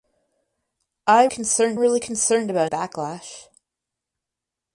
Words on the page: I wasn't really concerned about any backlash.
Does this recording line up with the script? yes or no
no